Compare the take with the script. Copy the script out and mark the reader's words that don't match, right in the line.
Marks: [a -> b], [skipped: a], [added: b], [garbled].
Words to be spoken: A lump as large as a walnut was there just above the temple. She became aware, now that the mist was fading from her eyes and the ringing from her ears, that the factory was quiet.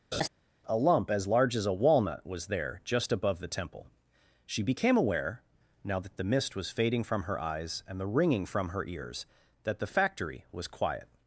A lump as large as a walnut was there just above the temple. She became aware, now that the mist was fading from her eyes and the ringing from her ears, that the factory was quiet.